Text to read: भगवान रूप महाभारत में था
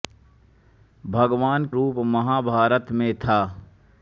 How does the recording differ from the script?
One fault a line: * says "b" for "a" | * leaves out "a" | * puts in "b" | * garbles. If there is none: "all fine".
all fine